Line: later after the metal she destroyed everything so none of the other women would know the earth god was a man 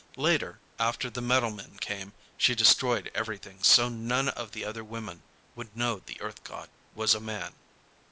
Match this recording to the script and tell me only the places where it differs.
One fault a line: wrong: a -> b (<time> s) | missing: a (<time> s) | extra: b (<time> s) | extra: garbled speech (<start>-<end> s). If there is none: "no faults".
extra: men came (1.5 s)